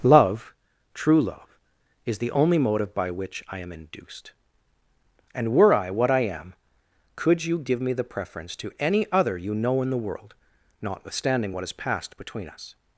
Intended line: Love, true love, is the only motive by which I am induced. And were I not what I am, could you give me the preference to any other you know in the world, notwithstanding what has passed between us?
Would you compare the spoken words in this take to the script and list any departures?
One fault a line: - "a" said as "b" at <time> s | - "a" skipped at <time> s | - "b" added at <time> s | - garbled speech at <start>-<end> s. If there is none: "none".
- "not" skipped at 5.9 s